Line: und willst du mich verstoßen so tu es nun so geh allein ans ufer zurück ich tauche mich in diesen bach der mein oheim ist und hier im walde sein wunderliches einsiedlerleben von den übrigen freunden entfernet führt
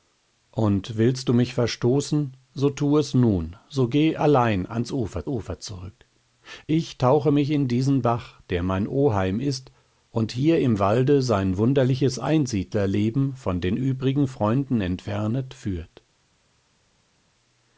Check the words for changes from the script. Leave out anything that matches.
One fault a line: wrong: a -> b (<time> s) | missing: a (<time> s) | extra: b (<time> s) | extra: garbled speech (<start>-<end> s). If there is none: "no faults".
extra: ufer (5.3 s)